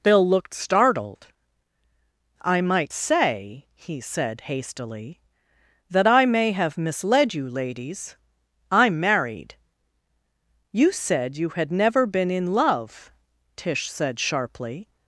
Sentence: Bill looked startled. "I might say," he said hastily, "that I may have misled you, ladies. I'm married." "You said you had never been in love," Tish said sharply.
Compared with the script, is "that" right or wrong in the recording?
right